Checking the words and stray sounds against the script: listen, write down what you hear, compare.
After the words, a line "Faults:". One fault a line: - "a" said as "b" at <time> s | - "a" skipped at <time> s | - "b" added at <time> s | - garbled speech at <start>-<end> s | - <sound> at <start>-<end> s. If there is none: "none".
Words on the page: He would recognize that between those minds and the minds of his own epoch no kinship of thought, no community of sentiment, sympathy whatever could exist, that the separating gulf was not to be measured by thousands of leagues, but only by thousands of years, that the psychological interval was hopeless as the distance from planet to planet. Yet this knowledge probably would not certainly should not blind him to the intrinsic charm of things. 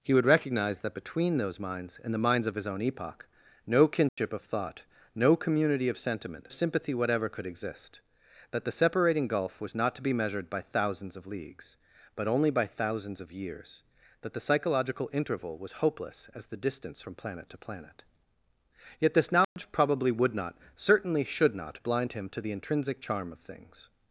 He would recognize that between those minds and the minds of his own epoch no kinship of thought, no community of sentiment, sympathy whatever could exist, that the separating gulf was not to be measured by thousands of leagues, but only by thousands of years, that the psychological interval was hopeless as the distance from planet to planet. Yet this knowledge probably would not certainly should not blind him to the intrinsic charm of things.
Faults:
- dropout at 4.1-4.2 s
- dropout at 19.4-19.6 s